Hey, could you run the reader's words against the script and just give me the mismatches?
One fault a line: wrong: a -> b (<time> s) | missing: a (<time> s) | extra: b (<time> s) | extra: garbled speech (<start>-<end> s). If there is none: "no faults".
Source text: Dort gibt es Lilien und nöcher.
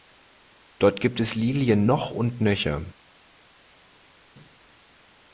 extra: noch (1.8 s)